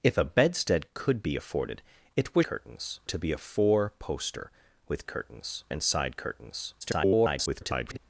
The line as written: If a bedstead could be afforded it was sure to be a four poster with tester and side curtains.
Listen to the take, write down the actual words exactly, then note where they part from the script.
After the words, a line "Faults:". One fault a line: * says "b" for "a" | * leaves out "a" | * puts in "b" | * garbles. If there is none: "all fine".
If a bedstead could be afforded it was curtains to be a four poster with curtains and side curtains. [garbled]
Faults:
* says "curtains" for "sure"
* says "curtains" for "tester"
* garbles